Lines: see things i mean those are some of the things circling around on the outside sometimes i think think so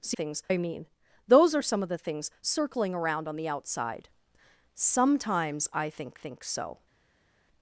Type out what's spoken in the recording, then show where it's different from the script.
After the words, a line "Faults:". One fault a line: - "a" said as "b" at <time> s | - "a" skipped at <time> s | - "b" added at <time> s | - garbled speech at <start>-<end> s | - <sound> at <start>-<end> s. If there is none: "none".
see things i mean those are some of the things circling around on the outside sometimes i think think so
Faults:
none